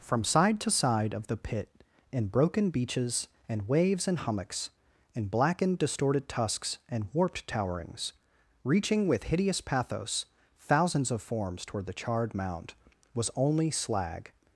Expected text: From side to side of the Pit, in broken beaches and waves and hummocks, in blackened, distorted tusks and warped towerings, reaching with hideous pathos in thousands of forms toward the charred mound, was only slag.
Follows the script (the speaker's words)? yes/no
no